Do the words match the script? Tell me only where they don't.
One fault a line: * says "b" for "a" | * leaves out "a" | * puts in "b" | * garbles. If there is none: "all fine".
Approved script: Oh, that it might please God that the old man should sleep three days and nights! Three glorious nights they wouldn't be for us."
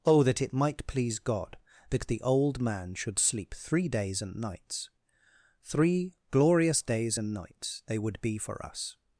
* puts in "days and"
* says "would" for "wouldn't"